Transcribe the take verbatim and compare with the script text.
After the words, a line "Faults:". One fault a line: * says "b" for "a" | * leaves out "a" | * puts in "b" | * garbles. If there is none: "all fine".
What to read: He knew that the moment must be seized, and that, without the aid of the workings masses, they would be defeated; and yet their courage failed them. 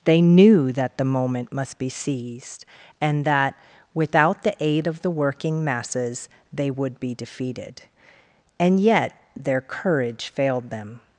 They knew that the moment must be seized, and that, without the aid of the working masses, they would be defeated; and yet their courage failed them.
Faults:
* says "They" for "He"
* says "working" for "workings"